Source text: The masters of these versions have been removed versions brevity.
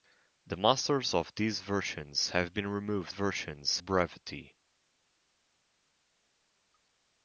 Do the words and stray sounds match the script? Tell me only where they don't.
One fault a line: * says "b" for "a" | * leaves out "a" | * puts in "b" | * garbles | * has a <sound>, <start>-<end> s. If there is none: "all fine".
all fine